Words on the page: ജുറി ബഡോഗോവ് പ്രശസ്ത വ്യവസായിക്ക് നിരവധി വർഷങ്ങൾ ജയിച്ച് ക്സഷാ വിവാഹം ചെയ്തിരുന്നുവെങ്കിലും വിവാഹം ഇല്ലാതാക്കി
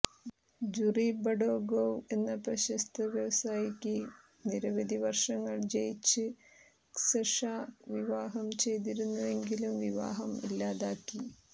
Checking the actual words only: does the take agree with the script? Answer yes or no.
no